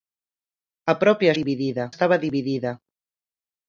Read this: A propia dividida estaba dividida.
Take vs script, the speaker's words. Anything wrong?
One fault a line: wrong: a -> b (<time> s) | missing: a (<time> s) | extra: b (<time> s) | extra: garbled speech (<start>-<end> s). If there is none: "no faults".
no faults